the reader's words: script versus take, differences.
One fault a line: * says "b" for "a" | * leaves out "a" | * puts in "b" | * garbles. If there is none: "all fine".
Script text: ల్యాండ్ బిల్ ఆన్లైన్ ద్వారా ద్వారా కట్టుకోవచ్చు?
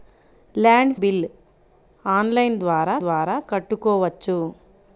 all fine